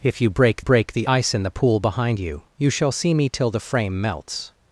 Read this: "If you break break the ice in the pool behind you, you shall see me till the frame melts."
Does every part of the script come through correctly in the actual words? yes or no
yes